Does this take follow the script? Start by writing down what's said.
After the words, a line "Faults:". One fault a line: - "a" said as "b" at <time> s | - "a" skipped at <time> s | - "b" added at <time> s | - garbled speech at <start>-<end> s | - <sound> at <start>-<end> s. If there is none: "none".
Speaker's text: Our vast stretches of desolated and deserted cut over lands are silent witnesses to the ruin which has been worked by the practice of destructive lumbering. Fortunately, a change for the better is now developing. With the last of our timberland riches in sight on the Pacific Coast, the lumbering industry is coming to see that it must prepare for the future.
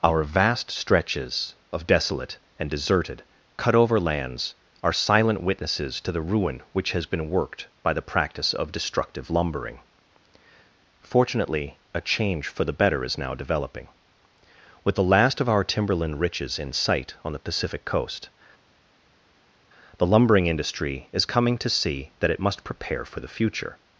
Our vast stretches of desolate and deserted cut over lands are silent witnesses to the ruin which has been worked by the practice of destructive lumbering. Fortunately, a change for the better is now developing. With the last of our timberland riches in sight on the Pacific Coast, the lumbering industry is coming to see that it must prepare for the future.
Faults:
- "desolated" said as "desolate" at 1.9 s